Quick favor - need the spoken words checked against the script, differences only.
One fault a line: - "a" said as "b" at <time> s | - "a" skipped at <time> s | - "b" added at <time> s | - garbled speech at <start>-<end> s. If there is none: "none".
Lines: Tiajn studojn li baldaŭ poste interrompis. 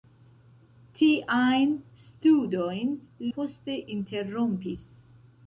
- "li baldaŭ" skipped at 3.0 s